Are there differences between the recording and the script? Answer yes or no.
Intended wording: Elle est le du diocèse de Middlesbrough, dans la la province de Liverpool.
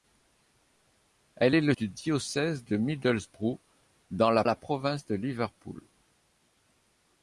no